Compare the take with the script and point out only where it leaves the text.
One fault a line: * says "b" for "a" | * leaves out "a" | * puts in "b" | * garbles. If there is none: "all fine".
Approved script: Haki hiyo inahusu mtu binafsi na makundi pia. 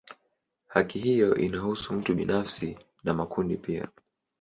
all fine